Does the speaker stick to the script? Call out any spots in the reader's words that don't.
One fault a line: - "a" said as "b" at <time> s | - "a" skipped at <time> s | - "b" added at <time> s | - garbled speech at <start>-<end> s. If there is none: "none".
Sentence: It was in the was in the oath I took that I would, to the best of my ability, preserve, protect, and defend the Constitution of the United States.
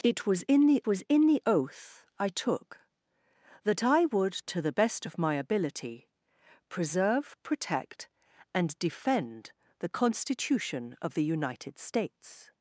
none